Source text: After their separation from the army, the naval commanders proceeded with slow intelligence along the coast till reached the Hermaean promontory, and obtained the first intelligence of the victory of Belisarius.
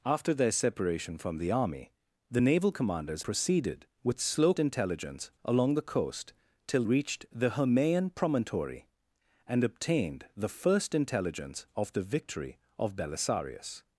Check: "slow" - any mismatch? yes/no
no